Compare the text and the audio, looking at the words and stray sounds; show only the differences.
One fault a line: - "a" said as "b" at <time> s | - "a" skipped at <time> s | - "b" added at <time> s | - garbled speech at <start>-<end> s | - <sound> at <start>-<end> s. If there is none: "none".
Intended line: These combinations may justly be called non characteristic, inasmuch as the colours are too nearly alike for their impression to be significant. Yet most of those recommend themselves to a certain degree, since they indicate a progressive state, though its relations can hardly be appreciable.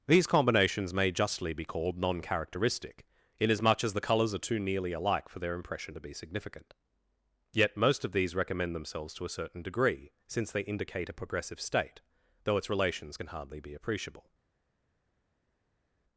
- "those" said as "these" at 8.1 s